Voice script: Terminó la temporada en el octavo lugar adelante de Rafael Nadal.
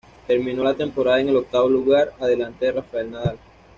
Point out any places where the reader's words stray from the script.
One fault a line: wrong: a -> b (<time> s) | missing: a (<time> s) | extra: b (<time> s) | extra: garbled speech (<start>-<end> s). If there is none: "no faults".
no faults